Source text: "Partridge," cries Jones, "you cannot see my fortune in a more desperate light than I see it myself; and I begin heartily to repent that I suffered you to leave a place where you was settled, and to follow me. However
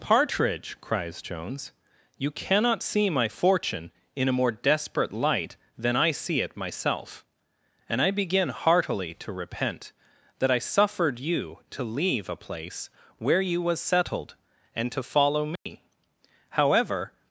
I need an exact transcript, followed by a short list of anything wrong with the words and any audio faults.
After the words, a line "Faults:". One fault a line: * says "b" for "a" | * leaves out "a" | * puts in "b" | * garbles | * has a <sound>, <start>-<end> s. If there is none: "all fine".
"Partridge," cries Jones, "you cannot see my fortune in a more desperate light than I see it myself; and I begin heartily to repent that I suffered you to leave a place where you was settled, and to follow me. However
Faults:
* has a dropout, 15.6-15.7 s